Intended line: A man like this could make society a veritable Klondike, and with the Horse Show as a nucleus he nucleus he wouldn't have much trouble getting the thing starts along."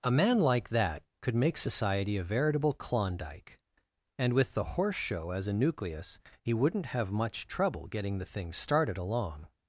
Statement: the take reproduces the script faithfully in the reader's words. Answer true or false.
false